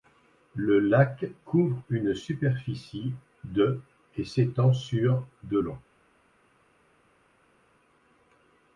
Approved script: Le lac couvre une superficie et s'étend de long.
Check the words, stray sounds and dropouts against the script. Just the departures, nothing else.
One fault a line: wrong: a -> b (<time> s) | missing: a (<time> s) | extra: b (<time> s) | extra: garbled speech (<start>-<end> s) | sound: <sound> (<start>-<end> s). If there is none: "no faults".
extra: de (3.4 s)
extra: sur (4.7 s)